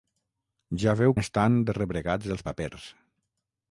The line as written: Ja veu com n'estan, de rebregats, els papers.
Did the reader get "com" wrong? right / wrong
wrong